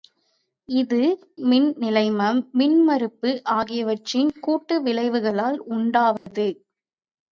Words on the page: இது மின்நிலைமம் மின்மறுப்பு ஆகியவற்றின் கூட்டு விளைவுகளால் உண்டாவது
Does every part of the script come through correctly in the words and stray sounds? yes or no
no